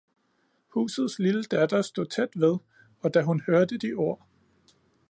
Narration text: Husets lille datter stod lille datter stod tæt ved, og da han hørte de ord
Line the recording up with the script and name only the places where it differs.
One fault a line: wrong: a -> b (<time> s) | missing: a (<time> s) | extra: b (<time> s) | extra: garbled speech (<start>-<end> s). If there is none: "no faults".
missing: lille datter stod (2.0 s)
wrong: han -> hun (3.2 s)